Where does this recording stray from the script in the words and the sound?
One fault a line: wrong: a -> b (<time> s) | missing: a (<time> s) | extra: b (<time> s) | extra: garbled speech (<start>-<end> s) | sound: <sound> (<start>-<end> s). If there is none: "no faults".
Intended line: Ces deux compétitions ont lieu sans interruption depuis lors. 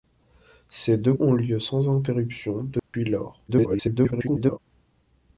missing: compétitions (1.1 s)
sound: dropout (2.8-2.9 s)
extra: garbled speech (3.5-4.6 s)